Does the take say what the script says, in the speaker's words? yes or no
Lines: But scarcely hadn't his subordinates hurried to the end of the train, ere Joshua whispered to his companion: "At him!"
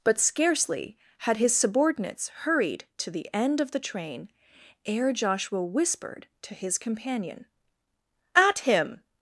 no